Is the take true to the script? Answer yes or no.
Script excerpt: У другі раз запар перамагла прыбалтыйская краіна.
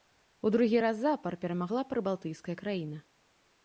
yes